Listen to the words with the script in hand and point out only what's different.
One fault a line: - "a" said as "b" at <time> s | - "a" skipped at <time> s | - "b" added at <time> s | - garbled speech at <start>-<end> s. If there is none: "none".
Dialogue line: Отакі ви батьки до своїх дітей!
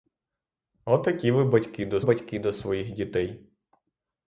- "батьки до" added at 2.0 s